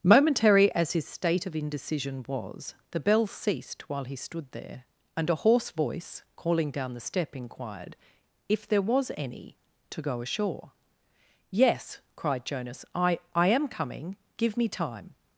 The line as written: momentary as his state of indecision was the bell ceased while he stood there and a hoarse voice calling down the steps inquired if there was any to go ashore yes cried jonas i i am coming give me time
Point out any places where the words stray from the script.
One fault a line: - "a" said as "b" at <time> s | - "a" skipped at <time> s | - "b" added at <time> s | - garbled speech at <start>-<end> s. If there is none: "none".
- "steps" said as "step" at 7.0 s